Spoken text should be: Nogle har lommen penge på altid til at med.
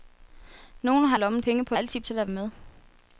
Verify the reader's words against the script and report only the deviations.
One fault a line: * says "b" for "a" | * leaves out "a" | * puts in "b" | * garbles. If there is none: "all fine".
all fine